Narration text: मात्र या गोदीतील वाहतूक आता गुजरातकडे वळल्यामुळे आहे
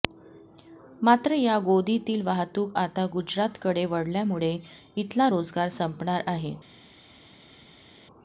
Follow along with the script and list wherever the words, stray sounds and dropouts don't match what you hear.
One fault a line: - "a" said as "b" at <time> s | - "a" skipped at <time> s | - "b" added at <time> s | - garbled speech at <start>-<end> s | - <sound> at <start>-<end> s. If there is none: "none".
- "इथला रोजगार संपणार" added at 5.0 s